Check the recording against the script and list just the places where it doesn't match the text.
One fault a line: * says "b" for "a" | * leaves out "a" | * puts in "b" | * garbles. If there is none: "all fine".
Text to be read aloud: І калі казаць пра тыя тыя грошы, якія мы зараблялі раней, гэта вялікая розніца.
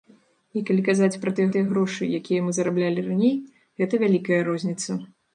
all fine